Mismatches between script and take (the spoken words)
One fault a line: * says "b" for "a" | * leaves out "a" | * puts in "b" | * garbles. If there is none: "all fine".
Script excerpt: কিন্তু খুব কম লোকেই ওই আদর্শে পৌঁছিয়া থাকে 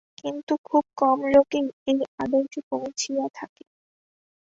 * says "এই" for "ওই"